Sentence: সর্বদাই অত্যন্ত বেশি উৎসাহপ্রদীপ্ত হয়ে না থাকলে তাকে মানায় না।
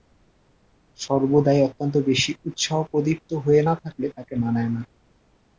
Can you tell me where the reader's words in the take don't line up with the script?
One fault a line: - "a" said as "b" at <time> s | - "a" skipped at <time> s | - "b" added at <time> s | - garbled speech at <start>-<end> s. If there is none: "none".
none